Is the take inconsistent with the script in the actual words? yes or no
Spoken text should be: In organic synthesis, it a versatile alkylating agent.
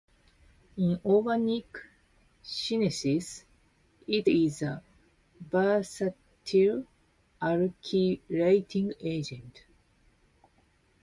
yes